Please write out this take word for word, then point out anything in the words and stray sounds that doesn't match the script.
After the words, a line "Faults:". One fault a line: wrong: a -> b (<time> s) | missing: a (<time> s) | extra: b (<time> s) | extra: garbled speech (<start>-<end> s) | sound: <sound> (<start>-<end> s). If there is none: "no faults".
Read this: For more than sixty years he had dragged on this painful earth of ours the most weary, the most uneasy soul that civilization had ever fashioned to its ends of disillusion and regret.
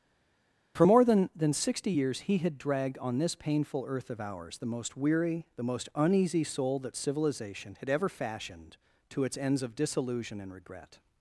For more than than sixty years he had dragged on this painful earth of ours the most weary, the most uneasy soul that civilization had ever fashioned to its ends of disillusion and regret.
Faults:
extra: than (1.4 s)